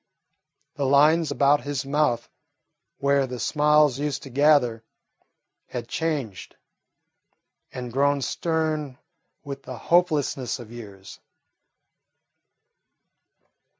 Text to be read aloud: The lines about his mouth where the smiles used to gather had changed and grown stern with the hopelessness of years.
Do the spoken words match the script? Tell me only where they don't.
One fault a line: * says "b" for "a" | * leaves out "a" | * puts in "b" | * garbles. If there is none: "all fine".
all fine